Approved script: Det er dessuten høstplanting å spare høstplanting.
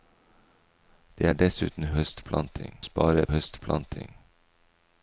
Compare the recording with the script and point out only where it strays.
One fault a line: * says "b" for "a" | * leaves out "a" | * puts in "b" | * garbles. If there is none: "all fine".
all fine